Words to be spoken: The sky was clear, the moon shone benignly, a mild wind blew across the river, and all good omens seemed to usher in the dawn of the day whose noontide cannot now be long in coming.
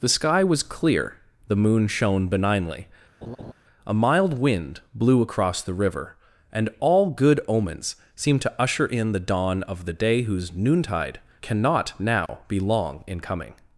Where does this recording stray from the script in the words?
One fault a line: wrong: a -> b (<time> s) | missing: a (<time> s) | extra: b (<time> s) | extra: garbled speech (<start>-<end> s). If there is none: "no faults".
no faults